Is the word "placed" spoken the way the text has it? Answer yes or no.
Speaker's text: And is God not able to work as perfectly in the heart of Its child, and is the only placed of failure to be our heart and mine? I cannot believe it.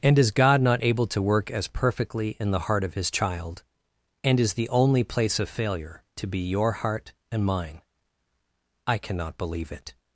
no